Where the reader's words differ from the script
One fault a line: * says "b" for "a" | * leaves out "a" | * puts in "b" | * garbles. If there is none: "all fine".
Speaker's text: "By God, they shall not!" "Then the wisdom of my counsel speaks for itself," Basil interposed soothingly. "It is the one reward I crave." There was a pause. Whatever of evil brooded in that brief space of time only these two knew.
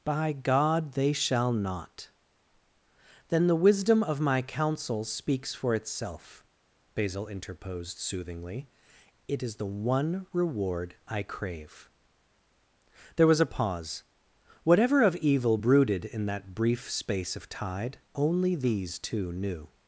* says "tide" for "time"